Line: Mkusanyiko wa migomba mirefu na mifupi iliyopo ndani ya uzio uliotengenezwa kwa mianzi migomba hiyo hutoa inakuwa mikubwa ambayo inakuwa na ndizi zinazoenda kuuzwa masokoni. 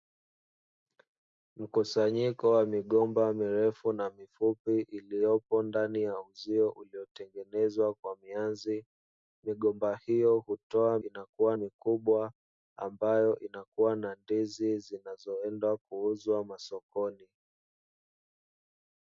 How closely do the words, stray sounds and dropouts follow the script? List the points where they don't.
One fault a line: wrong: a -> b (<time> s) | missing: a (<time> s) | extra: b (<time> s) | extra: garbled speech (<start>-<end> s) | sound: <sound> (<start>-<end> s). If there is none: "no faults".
no faults